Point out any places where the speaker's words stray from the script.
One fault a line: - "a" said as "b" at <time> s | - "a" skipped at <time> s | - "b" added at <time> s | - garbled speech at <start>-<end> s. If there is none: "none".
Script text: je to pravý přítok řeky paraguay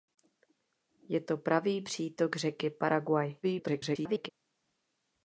- garbled speech at 3.4-4.3 s